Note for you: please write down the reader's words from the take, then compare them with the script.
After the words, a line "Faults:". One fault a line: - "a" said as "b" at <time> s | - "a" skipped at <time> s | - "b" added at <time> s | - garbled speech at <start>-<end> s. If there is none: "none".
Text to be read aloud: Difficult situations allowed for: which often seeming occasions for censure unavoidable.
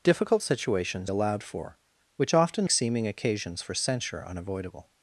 Difficult situations allowed for: which often seeming occasions for censure unavoidable.
Faults:
none